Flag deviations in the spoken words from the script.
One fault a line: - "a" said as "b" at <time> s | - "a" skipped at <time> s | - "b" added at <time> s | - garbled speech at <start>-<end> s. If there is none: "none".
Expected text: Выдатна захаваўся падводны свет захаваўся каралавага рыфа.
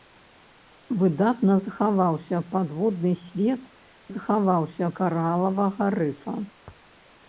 none